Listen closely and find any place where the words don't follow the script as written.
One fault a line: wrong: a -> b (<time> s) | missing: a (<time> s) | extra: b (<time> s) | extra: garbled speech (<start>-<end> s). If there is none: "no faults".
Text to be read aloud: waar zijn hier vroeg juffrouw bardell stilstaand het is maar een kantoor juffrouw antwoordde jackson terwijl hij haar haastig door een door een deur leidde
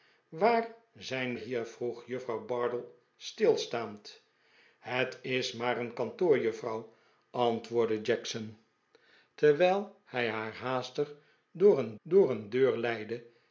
no faults